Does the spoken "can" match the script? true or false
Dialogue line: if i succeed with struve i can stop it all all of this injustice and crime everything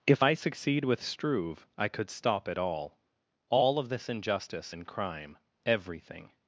false